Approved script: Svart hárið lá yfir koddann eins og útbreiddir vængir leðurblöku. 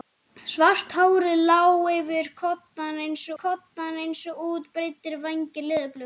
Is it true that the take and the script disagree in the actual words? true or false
true